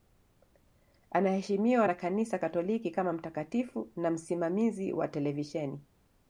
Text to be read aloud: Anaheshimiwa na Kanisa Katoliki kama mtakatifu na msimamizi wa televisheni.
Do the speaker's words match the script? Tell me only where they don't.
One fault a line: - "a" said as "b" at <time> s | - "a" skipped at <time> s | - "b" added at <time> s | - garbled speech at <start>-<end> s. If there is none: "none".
none